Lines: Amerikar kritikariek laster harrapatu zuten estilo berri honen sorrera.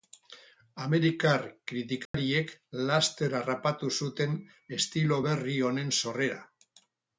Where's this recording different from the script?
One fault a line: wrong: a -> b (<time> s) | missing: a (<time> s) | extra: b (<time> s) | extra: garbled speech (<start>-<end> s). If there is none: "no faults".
no faults